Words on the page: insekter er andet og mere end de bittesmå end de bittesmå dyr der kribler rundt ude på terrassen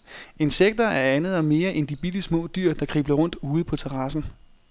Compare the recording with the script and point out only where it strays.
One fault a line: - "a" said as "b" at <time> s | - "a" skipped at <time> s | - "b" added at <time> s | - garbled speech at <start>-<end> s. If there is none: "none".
- "end de bittesmå" skipped at 2.5 s